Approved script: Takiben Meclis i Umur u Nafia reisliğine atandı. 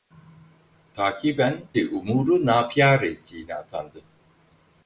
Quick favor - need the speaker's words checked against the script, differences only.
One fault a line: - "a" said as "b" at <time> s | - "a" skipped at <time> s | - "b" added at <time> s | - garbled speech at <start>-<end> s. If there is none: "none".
- "Meclis" skipped at 1.6 s